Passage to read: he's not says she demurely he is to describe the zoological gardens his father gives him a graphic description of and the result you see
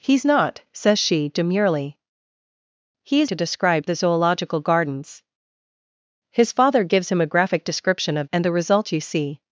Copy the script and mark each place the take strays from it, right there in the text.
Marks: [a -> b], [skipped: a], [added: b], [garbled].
he's not says she demurely he is to describe the zoological gardens his father gives him a graphic description of and the result you see